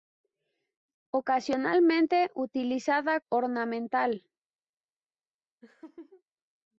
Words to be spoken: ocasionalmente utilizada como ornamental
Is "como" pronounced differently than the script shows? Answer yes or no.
yes